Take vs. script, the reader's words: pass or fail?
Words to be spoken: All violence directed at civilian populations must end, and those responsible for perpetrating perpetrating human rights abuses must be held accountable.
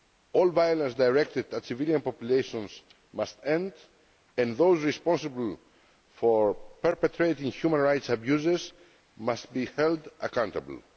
fail